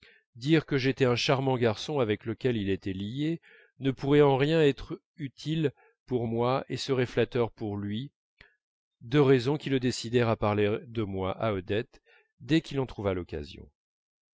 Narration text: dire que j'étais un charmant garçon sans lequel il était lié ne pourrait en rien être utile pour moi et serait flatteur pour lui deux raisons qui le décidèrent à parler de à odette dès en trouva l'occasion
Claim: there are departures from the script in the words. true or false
true